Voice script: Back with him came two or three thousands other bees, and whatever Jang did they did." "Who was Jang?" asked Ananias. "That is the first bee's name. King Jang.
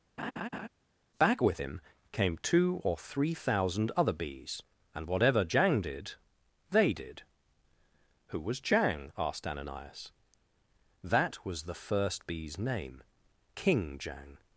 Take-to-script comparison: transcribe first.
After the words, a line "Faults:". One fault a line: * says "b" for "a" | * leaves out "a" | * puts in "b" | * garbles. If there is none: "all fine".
Back with him came two or three thousand other bees, and whatever Jang did they did." "Who was Jang?" asked Ananias. "That was the first bee's name. King Jang.
Faults:
* says "thousand" for "thousands"
* says "was" for "is"